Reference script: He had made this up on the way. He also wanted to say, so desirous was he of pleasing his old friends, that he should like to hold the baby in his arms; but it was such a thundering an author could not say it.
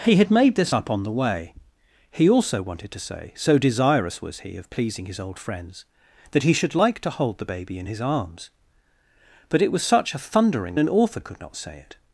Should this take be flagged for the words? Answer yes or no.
no